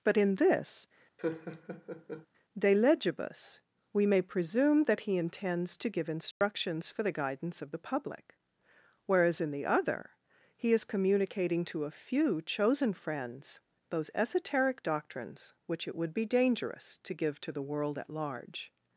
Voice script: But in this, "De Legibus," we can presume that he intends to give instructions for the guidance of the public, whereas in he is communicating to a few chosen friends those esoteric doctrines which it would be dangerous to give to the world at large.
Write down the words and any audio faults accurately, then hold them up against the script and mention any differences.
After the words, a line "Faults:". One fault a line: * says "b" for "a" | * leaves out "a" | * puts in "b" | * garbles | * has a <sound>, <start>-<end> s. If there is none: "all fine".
But in this, "De Legibus," we may presume that he intends to give instructions for the guidance of the public, whereas in the other he is communicating to a few chosen friends those esoteric doctrines which it would be dangerous to give to the world at large.
Faults:
* has a laugh, 1.2-2.3 s
* says "may" for "can"
* has a dropout, 6.3-6.4 s
* puts in "the other"